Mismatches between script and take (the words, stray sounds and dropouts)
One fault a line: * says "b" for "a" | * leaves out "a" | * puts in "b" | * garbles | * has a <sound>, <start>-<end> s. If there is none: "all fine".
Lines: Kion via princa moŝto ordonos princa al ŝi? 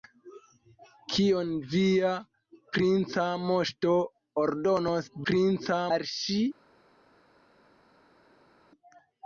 all fine